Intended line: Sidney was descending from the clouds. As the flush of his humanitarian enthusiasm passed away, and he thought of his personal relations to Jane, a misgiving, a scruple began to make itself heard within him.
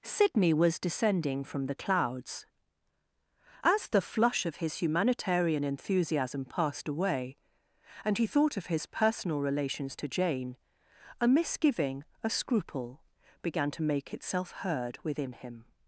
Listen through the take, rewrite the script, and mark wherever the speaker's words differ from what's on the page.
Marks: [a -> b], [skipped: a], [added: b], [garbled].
Sidney was descending from the clouds. As the flush of his humanitarian enthusiasm passed away, and he thought of his personal relations to Jane, a misgiving, a scruple began to make itself heard within him.